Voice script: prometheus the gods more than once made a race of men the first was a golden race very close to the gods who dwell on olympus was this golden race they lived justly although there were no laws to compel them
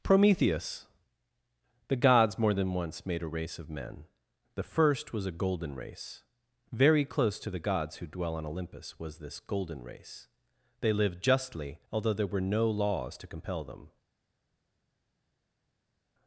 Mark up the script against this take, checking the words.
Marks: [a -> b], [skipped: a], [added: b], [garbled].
prometheus the gods more than once made a race of men the first was a golden race very close to the gods who dwell on olympus was this golden race they lived justly although there were no laws to compel them